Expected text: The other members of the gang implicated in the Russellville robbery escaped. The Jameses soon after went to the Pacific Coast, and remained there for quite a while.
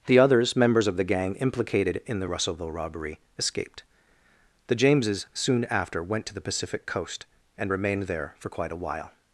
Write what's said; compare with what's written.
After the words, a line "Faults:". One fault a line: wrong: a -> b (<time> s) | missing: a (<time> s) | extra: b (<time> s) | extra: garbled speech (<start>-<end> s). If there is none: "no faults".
The others members of the gang implicated in the Russellville robbery escaped. The Jameses soon after went to the Pacific Coast, and remained there for quite a while.
Faults:
wrong: other -> others (0.2 s)